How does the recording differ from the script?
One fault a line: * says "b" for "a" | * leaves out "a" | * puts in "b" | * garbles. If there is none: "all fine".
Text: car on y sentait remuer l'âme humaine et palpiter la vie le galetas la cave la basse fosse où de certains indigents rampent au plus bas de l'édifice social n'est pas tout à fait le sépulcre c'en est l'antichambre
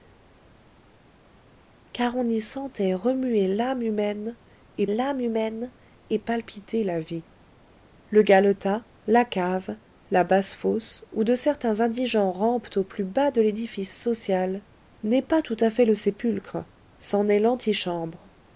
* puts in "l'âme humaine et"